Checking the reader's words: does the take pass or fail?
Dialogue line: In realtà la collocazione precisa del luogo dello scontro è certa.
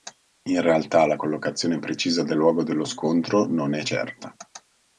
fail